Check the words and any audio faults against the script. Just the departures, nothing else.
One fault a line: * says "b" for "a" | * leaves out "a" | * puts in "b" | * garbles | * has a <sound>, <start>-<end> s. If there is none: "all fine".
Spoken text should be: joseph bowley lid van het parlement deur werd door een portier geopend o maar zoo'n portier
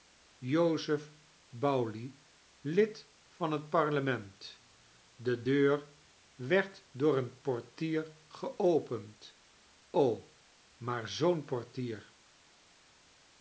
* puts in "de"